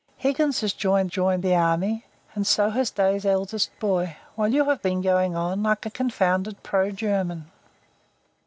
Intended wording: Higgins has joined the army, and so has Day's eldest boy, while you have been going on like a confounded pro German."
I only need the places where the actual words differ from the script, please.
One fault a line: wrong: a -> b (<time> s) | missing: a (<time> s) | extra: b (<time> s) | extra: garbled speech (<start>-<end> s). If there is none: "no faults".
extra: joined (1.1 s)